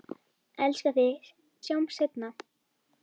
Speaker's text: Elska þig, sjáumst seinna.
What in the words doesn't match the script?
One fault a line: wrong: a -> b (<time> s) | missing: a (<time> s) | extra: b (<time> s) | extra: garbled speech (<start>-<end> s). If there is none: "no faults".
no faults